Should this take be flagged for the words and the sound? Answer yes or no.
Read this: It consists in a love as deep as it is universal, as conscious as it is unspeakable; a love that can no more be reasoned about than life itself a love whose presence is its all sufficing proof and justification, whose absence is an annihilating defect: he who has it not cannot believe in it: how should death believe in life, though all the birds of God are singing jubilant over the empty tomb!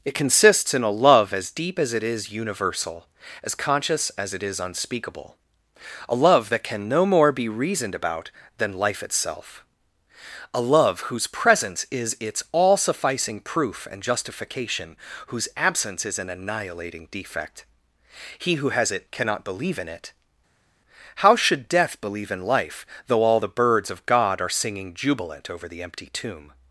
yes